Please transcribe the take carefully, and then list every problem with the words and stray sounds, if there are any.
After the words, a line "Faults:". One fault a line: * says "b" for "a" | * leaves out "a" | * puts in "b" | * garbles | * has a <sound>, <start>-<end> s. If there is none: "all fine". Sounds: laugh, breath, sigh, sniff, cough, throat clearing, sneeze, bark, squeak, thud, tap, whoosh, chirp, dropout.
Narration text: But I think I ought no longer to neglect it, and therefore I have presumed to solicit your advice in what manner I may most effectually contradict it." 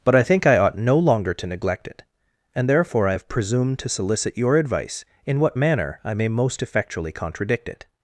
But I think I ought no longer to neglect it, and therefore I have presumed to solicit your advice in what manner I may most effectually contradict it."
Faults:
all fine